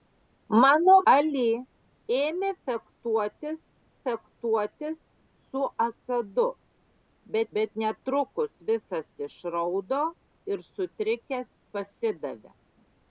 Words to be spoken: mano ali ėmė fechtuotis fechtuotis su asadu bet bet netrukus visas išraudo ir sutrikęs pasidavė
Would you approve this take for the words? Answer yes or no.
yes